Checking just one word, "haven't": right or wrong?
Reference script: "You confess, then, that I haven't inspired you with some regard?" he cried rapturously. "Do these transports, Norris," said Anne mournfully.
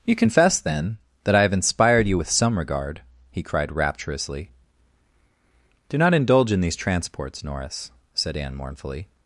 wrong